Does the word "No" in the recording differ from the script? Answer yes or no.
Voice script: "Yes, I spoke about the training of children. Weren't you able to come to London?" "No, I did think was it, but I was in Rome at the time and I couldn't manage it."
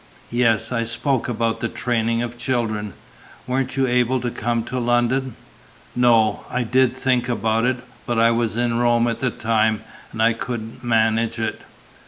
no